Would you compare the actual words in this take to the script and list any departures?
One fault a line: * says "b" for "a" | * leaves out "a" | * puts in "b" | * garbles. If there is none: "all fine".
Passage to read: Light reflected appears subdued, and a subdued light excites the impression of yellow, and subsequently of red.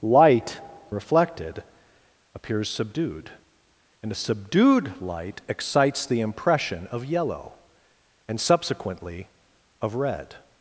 all fine